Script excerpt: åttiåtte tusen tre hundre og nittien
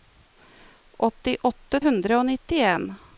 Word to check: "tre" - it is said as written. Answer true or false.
false